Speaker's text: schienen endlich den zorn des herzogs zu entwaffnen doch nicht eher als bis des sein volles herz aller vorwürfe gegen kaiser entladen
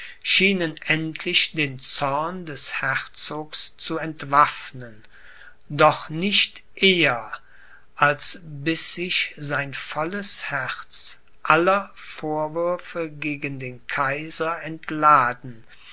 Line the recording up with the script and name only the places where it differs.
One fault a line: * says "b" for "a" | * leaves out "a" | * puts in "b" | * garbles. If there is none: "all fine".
* says "sich" for "des"
* puts in "den"